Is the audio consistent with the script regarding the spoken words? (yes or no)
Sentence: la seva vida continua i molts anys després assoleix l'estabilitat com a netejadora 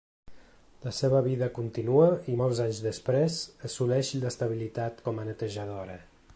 yes